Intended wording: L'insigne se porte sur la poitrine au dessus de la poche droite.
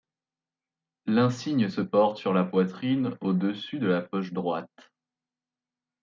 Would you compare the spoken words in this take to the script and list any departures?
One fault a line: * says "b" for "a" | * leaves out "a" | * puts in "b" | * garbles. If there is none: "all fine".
all fine